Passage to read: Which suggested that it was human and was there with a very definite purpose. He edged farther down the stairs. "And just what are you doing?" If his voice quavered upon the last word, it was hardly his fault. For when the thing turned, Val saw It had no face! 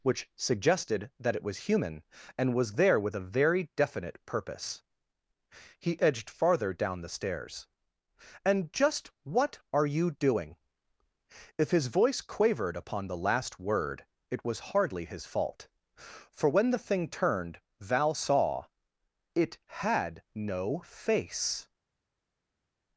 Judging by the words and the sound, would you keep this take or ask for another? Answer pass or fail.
pass